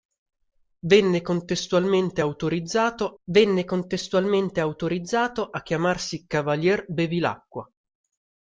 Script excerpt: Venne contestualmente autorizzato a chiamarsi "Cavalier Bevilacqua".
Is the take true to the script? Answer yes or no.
no